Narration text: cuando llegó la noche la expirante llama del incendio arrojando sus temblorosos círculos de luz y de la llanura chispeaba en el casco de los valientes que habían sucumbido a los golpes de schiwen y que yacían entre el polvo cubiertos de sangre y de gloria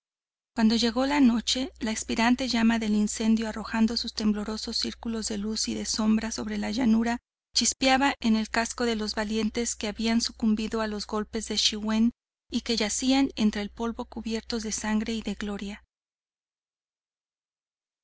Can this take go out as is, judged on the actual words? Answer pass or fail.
fail